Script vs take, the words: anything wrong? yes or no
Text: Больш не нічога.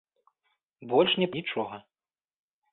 no